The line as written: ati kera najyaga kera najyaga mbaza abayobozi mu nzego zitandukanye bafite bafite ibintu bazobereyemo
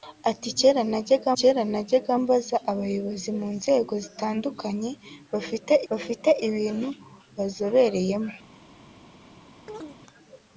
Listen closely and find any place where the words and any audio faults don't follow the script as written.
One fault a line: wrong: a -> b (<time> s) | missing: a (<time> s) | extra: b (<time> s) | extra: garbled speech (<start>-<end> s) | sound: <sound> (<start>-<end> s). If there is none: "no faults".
sound: chirp (9.7-10.0 s)